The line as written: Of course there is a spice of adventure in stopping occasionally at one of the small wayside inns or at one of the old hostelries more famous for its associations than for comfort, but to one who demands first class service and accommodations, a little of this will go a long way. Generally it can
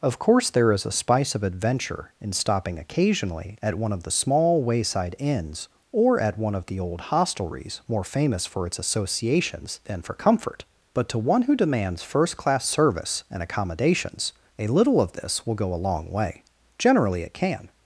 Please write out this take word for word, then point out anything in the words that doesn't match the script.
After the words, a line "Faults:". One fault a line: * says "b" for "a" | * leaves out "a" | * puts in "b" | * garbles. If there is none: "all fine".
Of course there is a spice of adventure in stopping occasionally at one of the small wayside inns or at one of the old hostelries more famous for its associations than for comfort, but to one who demands first class service and accommodations, a little of this will go a long way. Generally it can
Faults:
all fine